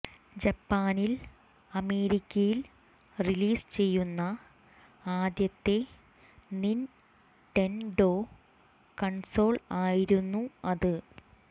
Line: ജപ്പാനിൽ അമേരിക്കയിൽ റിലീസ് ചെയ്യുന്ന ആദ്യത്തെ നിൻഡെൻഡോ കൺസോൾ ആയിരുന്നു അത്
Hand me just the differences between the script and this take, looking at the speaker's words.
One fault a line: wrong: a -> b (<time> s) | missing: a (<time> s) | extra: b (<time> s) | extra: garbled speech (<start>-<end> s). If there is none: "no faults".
no faults